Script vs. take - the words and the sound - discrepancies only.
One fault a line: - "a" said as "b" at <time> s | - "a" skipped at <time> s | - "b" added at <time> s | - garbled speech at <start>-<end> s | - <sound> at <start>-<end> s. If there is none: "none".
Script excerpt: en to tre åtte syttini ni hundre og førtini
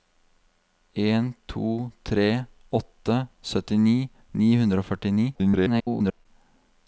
- garbled speech at 5.3-6.3 s